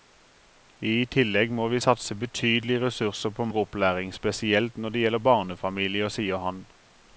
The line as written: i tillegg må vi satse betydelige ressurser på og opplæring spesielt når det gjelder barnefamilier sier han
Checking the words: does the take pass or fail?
pass